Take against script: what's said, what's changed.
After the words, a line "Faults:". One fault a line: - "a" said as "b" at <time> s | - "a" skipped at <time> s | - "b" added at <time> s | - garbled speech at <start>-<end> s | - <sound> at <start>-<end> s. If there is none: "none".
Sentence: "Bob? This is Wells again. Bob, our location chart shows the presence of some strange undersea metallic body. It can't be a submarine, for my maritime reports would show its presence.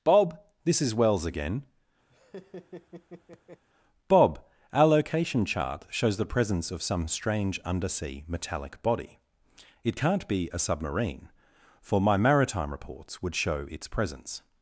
"Bob? This is Wells again. Bob, our location chart shows the presence of some strange undersea metallic body. It can't be a submarine, for my maritime reports would show its presence.
Faults:
- laugh at 2.1-3.6 s